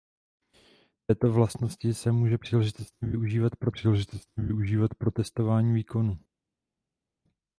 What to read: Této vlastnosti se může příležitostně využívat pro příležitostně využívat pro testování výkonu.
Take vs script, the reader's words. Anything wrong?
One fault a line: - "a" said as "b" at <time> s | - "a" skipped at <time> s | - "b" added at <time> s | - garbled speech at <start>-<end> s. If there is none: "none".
none